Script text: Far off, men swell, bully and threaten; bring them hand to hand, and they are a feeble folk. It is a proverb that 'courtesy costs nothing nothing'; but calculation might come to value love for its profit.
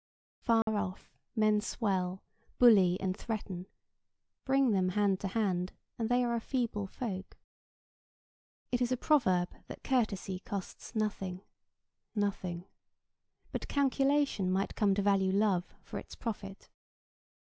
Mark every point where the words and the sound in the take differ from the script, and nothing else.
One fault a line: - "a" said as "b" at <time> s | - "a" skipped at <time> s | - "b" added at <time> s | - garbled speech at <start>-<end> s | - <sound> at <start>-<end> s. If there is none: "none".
- dropout at 0.6-0.7 s